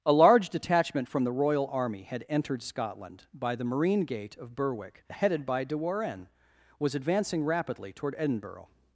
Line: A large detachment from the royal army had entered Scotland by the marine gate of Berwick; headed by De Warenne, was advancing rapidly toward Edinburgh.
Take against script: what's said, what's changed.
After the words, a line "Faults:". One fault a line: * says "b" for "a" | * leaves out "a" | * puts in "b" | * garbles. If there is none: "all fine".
A large detachment from the royal army had entered Scotland by the marine gate of Berwick; headed by De Warenne, was advancing rapidly toward Edinburgh.
Faults:
all fine